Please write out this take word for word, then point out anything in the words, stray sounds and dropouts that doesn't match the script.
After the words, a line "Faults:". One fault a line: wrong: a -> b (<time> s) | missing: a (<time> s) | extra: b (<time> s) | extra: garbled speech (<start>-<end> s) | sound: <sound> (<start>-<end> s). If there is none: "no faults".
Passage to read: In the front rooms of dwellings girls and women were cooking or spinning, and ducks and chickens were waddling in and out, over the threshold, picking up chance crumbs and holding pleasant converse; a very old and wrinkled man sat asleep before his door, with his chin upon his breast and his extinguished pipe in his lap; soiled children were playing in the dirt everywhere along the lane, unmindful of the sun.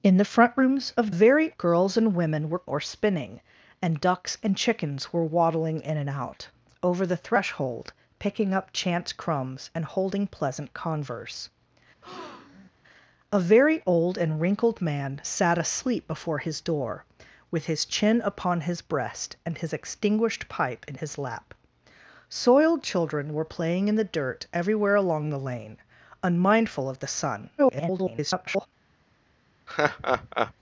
In the front rooms of very girls and women were or spinning, and ducks and chickens were waddling in and out, over the threshold, picking up chance crumbs and holding pleasant converse; a very old and wrinkled man sat asleep before his door, with his chin upon his breast and his extinguished pipe in his lap; soiled children were playing in the dirt everywhere along the lane, unmindful of the sun. [garbled]
Faults:
wrong: dwellings -> very (1.1 s)
missing: cooking (2.6 s)
sound: breath (12.0-12.7 s)
extra: garbled speech (27.6-28.7 s)
sound: laugh (29.7-30.5 s)